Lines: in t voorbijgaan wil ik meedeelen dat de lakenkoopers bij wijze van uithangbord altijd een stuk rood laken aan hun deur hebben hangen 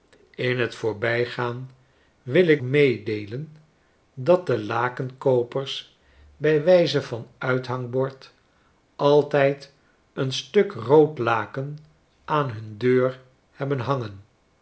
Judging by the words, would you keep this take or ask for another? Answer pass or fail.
pass